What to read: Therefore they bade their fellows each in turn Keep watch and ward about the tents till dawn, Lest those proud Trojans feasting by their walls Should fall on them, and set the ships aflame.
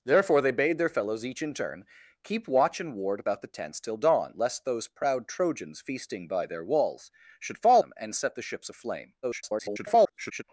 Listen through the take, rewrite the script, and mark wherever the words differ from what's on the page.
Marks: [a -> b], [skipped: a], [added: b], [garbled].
Therefore they bade their fellows each in turn Keep watch and ward about the tents till dawn, Lest those proud Trojans feasting by their walls Should fall [skipped: on] them, and set the ships aflame. [garbled]